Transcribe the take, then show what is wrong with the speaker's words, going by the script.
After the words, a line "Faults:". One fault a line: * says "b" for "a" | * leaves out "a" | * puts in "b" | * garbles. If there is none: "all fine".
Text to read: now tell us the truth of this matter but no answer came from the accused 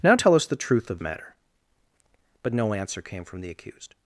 now tell us the truth of matter but no answer came from the accused
Faults:
* leaves out "this"